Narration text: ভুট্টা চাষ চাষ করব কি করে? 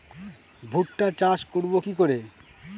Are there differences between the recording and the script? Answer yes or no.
yes